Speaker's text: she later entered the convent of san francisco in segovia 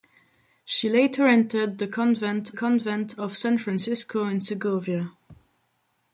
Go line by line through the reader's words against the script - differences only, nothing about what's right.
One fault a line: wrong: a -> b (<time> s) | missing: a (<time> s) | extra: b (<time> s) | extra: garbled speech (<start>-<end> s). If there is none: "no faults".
extra: convent (2.5 s)